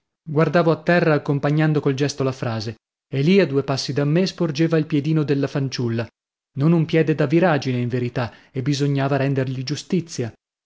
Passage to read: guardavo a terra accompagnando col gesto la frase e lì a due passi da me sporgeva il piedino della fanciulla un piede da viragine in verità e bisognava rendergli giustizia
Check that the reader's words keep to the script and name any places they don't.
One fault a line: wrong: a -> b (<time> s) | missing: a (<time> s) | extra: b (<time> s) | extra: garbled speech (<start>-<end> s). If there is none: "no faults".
extra: non (6.6 s)